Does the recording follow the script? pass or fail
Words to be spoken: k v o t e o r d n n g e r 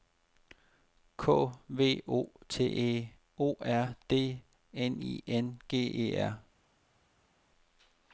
fail